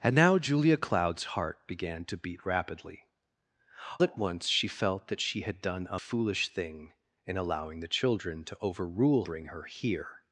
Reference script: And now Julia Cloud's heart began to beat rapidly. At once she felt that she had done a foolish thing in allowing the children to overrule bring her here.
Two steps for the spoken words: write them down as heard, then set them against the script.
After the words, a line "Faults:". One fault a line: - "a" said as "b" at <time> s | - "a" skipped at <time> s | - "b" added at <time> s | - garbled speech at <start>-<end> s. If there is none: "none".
And now Julia Cloud's heart began to beat rapidly. At once she felt that she had done a foolish thing in allowing the children to overrule bring her here.
Faults:
none